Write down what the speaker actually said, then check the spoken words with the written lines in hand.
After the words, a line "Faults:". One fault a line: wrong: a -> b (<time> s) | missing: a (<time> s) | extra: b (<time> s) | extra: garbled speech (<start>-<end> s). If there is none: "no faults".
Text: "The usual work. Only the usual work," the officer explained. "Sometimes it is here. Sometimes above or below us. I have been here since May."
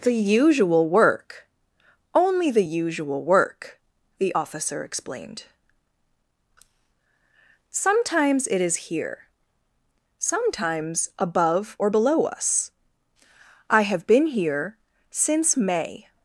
"The usual work. Only the usual work," the officer explained. "Sometimes it is here. Sometimes above or below us. I have been here since May."
Faults:
no faults